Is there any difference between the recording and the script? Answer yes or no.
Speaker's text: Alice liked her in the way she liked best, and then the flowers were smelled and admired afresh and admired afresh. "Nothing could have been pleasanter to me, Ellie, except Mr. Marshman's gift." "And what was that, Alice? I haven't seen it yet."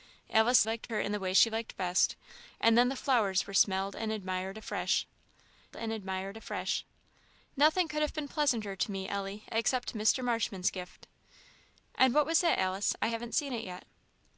no